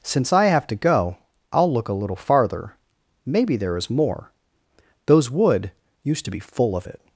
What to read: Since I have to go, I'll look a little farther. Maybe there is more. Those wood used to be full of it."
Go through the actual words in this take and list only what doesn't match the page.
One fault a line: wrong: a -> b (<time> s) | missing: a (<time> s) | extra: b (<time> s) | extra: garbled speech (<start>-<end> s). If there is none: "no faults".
no faults